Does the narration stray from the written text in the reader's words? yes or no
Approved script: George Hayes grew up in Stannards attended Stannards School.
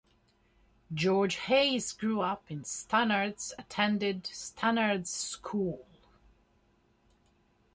no